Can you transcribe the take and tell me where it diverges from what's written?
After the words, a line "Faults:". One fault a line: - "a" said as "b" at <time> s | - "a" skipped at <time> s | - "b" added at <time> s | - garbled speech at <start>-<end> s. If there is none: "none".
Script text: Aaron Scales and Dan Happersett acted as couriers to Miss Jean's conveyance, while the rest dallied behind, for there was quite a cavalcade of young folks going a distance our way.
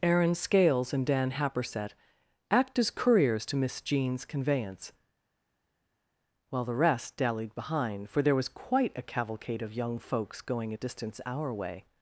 Aaron Scales and Dan Happersett act as couriers to Miss Jean's conveyance, while the rest dallied behind, for there was quite a cavalcade of young folks going a distance our way.
Faults:
- "acted" said as "act" at 2.5 s